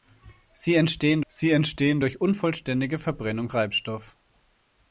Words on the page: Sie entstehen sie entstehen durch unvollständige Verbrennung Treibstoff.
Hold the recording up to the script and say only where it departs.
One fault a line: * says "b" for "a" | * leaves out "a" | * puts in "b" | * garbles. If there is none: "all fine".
all fine